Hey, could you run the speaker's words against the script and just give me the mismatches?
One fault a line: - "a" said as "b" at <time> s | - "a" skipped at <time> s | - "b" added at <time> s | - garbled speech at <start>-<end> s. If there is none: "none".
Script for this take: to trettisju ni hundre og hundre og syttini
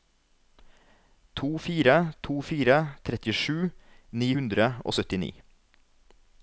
- "fire to fire" added at 1.6 s
- "hundre og" skipped at 5.0 s